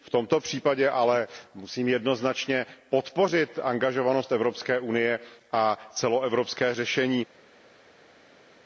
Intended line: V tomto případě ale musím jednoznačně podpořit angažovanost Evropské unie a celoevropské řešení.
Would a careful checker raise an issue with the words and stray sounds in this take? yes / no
no